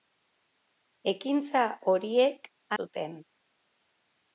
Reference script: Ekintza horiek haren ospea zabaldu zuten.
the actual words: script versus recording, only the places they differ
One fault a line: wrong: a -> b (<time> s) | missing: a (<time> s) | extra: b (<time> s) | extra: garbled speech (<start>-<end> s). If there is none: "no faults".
missing: haren ospea zabaldu (2.5 s)